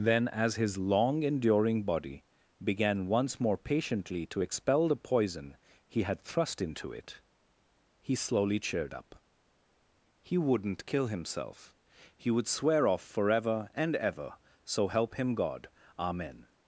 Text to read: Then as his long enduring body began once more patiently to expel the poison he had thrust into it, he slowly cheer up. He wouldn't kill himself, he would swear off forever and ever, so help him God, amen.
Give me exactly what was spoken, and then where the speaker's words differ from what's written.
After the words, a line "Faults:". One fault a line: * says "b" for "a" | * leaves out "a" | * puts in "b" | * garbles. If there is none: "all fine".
Then as his long enduring body began once more patiently to expel the poison he had thrust into it, he slowly cheered up. He wouldn't kill himself, he would swear off forever and ever, so help him God, amen.
Faults:
* says "cheered" for "cheer"